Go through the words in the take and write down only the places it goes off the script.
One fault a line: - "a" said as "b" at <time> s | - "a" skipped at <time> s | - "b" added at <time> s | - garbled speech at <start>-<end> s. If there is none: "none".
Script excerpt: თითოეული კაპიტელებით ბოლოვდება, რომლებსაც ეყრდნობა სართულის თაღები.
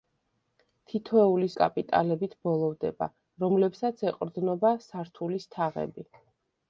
none